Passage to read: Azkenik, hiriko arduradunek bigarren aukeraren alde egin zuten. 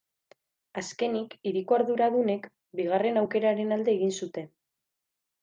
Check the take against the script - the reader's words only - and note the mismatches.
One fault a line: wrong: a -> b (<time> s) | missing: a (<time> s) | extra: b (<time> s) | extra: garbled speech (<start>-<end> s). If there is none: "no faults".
no faults